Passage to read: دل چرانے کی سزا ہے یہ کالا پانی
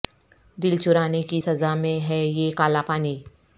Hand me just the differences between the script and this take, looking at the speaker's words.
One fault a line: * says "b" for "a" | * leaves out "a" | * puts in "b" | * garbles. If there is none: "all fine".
* puts in "میں"